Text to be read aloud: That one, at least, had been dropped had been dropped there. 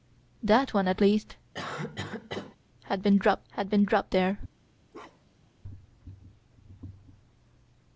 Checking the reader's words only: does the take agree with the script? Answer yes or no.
yes